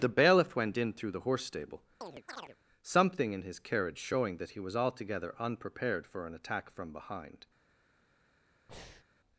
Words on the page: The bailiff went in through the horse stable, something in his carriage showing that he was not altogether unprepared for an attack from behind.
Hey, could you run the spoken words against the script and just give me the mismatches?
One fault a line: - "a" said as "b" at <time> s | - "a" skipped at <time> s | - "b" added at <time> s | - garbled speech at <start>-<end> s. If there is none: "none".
- "not" skipped at 4.8 s